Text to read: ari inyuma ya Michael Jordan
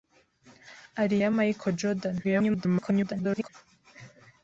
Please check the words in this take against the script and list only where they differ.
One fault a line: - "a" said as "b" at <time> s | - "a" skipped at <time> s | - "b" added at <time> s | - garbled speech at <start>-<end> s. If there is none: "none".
- "inyuma" skipped at 1.1 s
- garbled speech at 2.2-3.5 s